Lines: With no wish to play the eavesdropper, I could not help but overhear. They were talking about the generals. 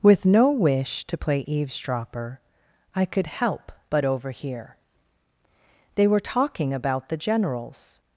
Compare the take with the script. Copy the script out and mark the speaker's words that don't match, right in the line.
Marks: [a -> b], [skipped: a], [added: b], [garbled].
With no wish to play [skipped: the] eavesdropper, I could [skipped: not] help but overhear. They were talking about the generals.